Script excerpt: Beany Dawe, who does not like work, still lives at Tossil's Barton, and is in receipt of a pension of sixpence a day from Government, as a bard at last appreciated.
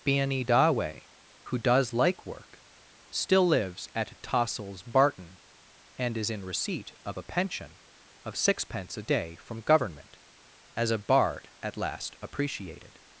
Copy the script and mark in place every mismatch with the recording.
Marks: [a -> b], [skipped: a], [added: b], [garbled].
Beany Dawe, who does [skipped: not] like work, still lives at Tossil's Barton, and is in receipt of a pension of sixpence a day from Government, as a bard at last appreciated.